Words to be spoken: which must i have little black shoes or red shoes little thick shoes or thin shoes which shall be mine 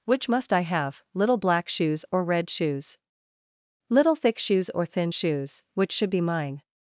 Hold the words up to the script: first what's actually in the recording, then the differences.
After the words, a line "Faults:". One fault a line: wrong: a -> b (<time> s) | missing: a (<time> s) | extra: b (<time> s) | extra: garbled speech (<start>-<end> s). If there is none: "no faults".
which must i have little black shoes or red shoes little thick shoes or thin shoes which should be mine
Faults:
wrong: shall -> should (5.9 s)